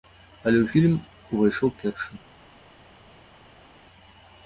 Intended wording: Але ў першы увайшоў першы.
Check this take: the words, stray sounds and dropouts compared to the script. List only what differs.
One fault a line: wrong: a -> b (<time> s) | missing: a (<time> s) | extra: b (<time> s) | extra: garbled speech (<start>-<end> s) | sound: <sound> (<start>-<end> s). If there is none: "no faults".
wrong: першы -> фільм (0.7 s)